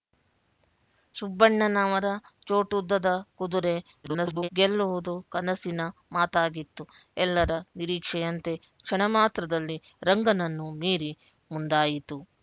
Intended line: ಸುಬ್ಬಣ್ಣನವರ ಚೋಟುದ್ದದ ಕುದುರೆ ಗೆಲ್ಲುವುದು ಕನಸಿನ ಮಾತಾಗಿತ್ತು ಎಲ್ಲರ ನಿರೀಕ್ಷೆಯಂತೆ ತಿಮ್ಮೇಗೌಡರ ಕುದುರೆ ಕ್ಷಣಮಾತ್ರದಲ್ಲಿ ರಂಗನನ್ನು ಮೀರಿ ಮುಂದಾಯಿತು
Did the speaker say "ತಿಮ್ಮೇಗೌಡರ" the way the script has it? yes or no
no